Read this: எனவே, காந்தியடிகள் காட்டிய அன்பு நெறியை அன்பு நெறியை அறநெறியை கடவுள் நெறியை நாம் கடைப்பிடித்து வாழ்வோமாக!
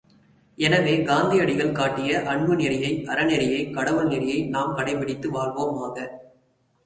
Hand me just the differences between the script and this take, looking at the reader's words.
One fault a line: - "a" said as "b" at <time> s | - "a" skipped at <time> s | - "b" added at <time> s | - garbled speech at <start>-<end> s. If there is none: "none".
- "அன்பு நெறியை" skipped at 3.0 s